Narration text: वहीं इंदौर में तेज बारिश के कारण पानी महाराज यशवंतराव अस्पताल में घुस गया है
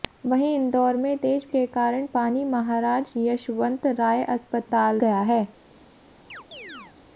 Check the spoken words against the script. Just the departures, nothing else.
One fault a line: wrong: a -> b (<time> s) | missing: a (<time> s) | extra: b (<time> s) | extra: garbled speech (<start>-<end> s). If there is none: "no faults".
missing: बारिश (1.4 s)
missing: में घुस (5.0 s)